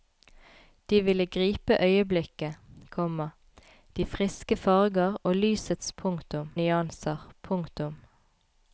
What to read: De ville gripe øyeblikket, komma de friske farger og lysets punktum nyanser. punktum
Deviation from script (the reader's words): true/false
false